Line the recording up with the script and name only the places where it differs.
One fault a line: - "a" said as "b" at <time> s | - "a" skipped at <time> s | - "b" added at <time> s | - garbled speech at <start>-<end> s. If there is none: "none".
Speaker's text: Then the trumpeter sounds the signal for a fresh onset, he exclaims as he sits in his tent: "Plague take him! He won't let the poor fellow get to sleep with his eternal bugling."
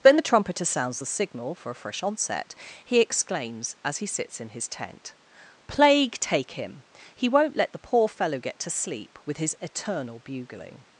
none